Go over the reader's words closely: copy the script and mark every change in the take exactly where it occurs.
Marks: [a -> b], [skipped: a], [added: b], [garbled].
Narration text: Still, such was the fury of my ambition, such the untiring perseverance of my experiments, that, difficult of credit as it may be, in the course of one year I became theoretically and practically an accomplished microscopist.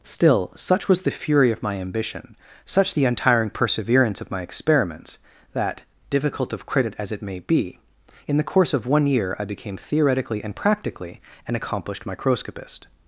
Still, such was the fury of my ambition, such the untiring perseverance of my experiments, that, difficult of credit as it may be, in the course of one year I became theoretically and practically an accomplished microscopist.